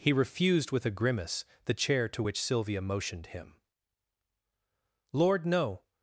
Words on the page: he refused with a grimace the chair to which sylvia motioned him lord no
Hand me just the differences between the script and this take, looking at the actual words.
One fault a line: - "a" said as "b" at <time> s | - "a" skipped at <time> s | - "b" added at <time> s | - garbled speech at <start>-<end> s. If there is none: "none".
none